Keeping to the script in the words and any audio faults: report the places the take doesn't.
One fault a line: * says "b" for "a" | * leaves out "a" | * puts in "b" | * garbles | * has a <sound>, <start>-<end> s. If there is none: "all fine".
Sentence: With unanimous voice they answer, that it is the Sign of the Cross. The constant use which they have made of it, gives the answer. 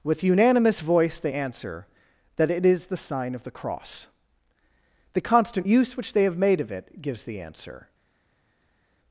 all fine